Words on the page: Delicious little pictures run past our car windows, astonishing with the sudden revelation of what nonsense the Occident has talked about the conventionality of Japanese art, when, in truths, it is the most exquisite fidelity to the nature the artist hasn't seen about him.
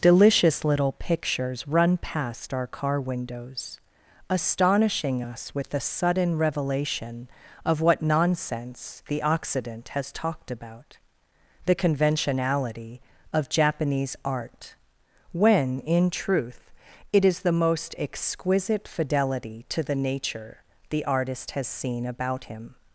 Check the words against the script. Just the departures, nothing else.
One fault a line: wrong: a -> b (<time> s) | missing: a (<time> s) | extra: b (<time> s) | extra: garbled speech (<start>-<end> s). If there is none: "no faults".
extra: us (5.2 s)
wrong: truths -> truth (16.1 s)
wrong: hasn't -> has (21.5 s)